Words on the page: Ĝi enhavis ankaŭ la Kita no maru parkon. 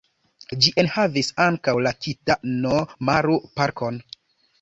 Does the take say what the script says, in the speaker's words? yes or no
yes